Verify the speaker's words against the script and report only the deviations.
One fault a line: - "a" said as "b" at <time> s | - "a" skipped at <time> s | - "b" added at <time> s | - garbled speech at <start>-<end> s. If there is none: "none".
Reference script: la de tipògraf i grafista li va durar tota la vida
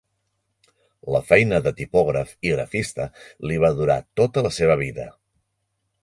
- "feina" added at 1.3 s
- "seva" added at 4.6 s